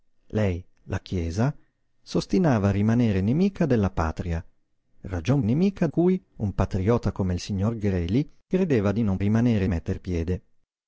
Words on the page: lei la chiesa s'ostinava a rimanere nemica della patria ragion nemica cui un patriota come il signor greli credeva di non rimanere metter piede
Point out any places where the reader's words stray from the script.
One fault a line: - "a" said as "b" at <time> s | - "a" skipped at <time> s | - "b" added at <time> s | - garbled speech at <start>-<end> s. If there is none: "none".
none